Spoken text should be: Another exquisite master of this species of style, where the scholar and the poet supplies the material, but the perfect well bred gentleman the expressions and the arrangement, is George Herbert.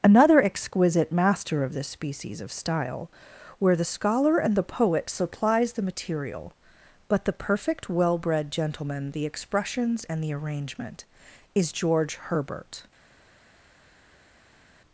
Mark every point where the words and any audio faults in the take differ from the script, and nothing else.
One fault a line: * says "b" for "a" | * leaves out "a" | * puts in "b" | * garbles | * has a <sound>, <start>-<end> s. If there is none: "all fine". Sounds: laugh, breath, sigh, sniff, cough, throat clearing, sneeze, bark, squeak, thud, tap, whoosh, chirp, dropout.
all fine